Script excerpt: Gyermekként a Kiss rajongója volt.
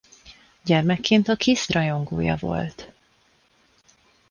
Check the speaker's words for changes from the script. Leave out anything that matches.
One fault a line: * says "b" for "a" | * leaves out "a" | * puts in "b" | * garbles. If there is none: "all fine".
all fine